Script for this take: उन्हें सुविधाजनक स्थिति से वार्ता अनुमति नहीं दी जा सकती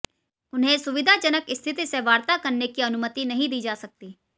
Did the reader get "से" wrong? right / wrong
right